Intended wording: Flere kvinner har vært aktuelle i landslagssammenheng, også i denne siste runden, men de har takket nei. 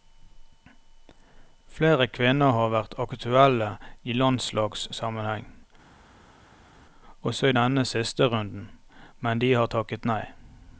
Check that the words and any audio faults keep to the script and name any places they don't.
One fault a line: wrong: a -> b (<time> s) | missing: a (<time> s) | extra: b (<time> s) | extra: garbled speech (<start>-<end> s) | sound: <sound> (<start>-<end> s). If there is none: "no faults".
no faults